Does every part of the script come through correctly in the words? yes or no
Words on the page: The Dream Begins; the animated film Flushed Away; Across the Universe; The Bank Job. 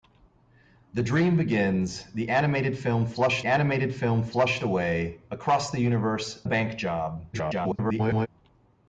no